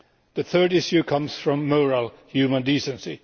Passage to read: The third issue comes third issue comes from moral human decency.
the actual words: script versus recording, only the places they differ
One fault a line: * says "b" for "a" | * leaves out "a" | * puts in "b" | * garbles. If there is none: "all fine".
* leaves out "third issue comes"